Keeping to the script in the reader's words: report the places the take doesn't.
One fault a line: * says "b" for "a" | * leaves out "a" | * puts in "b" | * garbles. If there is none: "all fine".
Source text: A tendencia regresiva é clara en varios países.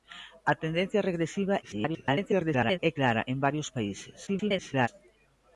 * garbles
* garbles